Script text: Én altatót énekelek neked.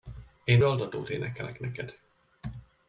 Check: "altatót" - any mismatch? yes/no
no